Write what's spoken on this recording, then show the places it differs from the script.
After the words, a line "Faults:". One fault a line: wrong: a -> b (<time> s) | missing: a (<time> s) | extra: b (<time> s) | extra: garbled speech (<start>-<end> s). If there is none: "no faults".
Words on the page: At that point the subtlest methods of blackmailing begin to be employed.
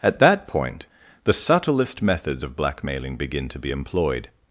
At that point the subtlest methods of blackmailing begin to be employed.
Faults:
no faults